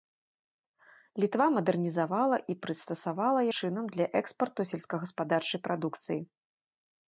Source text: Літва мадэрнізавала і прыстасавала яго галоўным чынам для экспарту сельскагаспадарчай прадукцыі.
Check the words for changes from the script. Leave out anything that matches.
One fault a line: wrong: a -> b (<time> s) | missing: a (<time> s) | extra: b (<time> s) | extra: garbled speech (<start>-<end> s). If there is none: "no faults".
missing: яго галоўным (3.4 s)